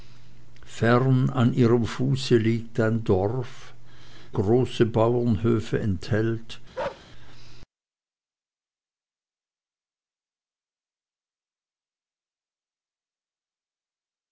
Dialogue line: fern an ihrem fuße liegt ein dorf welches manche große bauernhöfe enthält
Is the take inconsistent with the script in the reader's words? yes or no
yes